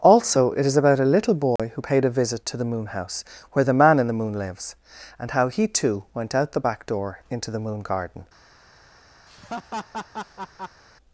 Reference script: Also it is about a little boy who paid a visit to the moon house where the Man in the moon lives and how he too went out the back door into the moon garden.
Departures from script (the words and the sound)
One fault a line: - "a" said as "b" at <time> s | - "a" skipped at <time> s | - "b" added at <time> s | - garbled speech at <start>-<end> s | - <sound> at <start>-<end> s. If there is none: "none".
- dropout at 1.6-1.6 s
- laugh at 9.3-10.8 s